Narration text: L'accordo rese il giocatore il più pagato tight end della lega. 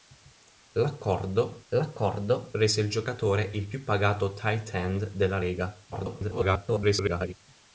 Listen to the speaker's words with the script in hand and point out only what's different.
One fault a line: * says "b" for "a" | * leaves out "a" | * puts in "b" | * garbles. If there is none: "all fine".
* puts in "l'accordo"
* garbles